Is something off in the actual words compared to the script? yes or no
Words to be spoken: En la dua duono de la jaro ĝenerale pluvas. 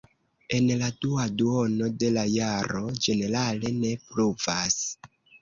yes